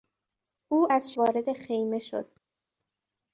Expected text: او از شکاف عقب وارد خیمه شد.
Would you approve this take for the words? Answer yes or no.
no